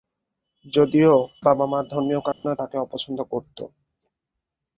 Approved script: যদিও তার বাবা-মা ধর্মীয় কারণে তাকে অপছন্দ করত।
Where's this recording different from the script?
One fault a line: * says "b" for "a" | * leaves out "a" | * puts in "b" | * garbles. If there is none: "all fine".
* leaves out "তার"